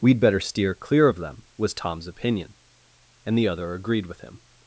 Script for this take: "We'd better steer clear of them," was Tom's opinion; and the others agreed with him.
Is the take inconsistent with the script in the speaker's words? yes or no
yes